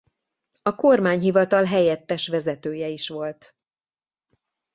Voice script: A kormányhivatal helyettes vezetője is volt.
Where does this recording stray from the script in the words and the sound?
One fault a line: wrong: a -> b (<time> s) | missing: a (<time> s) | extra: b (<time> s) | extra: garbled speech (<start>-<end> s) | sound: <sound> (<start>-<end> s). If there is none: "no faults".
no faults